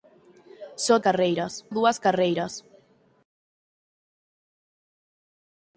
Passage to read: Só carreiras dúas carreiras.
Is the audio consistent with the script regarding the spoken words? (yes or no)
yes